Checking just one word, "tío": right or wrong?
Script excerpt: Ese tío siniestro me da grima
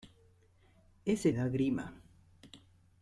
wrong